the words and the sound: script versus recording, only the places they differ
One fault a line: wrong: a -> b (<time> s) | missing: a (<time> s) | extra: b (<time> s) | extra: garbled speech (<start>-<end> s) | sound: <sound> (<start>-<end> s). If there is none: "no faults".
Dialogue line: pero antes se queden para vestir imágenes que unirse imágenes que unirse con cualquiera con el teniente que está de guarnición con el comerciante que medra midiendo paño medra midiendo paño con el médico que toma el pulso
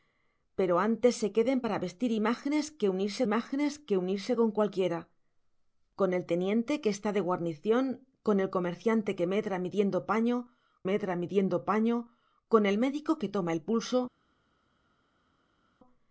no faults